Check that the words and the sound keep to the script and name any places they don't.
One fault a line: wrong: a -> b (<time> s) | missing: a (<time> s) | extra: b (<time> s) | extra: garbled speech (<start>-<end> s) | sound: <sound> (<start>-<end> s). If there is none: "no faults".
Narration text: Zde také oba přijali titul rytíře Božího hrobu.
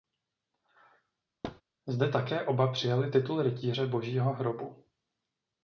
sound: thud (1.4-1.6 s)